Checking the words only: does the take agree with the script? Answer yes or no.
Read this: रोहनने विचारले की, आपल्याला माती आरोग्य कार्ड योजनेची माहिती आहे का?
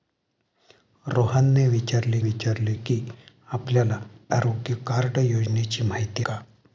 no